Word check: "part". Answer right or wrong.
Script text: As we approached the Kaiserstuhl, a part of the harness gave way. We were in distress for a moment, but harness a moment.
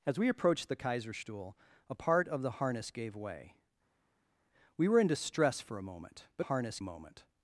right